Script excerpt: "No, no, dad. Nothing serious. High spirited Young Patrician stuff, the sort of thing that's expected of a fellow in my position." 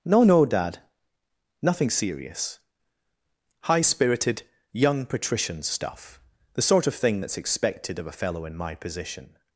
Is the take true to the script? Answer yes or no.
yes